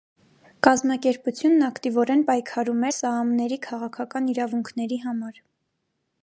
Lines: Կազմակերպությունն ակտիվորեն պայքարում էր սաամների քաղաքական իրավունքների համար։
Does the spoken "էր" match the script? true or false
false